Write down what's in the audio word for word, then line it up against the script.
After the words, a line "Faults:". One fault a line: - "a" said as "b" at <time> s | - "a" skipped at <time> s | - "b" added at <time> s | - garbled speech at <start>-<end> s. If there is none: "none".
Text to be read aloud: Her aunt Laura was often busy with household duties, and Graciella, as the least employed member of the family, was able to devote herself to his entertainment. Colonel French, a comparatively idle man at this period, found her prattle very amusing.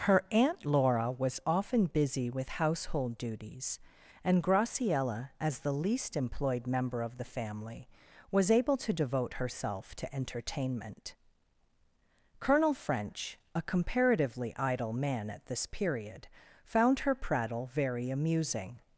Her aunt Laura was often busy with household duties, and Graciella, as the least employed member of the family, was able to devote herself to entertainment. Colonel French, a comparatively idle man at this period, found her prattle very amusing.
Faults:
- "his" skipped at 10.2 s